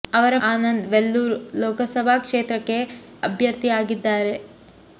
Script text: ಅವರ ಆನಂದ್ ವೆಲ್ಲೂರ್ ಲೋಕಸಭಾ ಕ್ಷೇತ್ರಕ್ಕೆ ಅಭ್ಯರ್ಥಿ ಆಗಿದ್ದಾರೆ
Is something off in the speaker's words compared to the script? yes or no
no